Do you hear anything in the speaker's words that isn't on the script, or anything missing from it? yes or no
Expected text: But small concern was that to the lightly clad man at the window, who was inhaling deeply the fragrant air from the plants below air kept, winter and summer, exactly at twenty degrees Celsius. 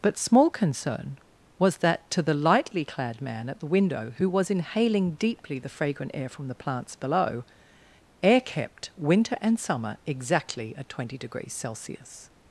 no